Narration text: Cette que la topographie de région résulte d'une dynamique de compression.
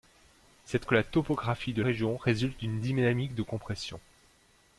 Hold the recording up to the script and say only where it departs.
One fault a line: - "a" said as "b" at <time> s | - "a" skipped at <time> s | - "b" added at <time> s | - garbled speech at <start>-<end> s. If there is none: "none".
none